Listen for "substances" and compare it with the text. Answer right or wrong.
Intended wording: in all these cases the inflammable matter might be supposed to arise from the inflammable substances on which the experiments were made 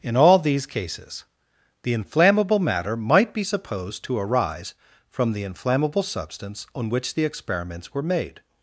wrong